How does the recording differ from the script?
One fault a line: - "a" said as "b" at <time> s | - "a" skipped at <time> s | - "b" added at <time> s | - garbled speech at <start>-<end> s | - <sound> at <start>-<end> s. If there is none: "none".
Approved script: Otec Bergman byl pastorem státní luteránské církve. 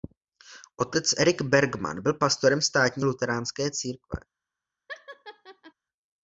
- "Erik" added at 1.2 s
- laugh at 4.9-5.7 s